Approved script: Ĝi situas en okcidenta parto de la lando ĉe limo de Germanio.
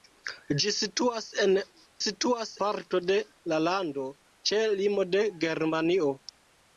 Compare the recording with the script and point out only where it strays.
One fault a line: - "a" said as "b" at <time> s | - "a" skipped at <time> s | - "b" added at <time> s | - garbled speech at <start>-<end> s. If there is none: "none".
- "okcidenta" said as "situas" at 2.0 s